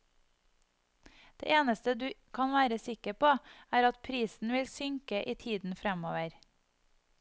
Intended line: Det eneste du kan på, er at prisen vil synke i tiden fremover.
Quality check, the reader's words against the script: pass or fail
fail